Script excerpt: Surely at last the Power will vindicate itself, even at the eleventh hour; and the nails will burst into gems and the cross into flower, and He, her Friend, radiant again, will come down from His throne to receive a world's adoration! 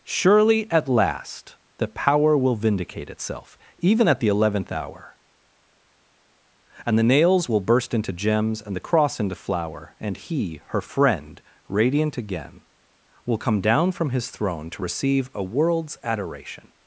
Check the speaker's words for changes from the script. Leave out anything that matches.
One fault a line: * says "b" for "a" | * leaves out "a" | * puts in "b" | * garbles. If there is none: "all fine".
all fine